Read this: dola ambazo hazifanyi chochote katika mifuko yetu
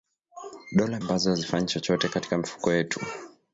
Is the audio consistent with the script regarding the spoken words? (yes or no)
yes